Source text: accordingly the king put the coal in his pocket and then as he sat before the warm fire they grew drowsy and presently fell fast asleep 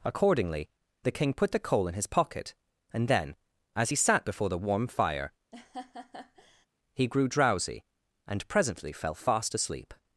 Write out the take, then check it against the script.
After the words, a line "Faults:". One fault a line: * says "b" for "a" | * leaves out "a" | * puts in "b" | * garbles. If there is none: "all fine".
accordingly the king put the coal in his pocket and then as he sat before the warm fire he grew drowsy and presently fell fast asleep
Faults:
* says "he" for "they"